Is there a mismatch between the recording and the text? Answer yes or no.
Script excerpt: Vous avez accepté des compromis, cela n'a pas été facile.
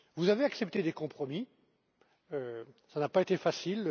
no